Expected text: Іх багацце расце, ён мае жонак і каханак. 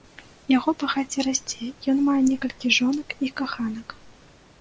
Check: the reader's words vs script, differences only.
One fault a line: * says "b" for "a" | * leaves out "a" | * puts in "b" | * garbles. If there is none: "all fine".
* says "Яго" for "Іх"
* puts in "некалькі"